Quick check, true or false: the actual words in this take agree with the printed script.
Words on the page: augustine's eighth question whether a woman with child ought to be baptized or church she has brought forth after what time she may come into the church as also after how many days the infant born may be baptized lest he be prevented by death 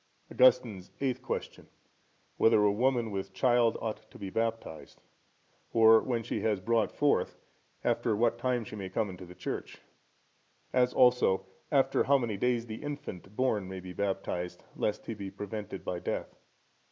false